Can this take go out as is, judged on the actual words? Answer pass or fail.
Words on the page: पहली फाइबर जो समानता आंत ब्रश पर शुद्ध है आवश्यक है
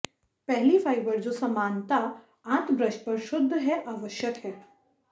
pass